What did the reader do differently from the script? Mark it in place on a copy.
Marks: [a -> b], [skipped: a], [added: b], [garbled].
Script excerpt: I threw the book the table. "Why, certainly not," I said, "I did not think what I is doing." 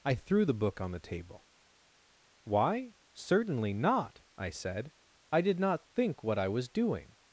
I threw the book [added: on] the table. "Why, certainly not," I said, "I did not think what I [is -> was] doing."